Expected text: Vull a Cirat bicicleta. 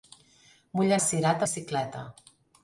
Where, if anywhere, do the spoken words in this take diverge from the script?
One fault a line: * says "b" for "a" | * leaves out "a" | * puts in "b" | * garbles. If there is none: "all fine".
all fine